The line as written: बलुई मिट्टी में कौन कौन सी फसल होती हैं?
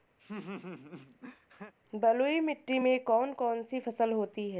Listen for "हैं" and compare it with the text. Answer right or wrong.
right